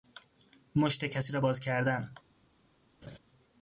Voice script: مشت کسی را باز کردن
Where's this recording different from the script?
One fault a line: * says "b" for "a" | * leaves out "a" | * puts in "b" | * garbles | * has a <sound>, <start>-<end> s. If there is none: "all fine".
* has a laugh, 3.0-3.2 s